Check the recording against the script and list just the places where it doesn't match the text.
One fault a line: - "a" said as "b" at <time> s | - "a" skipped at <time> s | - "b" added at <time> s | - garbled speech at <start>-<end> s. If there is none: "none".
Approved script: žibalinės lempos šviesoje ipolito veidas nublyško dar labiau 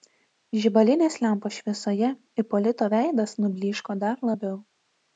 none